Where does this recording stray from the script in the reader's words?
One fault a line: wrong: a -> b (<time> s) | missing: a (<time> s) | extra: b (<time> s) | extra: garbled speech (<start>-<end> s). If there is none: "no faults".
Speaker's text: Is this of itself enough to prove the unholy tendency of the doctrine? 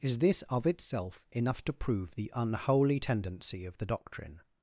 no faults